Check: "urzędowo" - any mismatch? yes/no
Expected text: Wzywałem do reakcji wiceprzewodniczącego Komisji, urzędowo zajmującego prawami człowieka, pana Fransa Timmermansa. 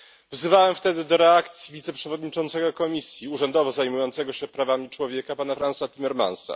no